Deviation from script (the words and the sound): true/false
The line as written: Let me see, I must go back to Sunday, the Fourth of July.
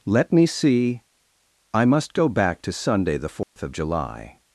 true